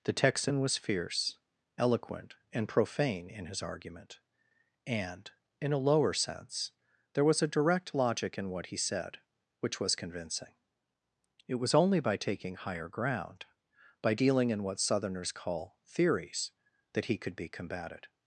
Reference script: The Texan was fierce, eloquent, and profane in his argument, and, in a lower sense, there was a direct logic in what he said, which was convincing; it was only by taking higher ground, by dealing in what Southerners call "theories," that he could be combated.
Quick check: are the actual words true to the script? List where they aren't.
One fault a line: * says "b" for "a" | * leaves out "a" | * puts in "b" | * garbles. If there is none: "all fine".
all fine